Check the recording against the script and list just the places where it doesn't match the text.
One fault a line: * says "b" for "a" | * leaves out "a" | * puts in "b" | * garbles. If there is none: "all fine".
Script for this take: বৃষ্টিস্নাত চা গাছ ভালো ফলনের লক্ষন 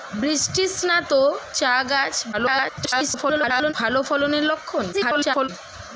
* garbles
* garbles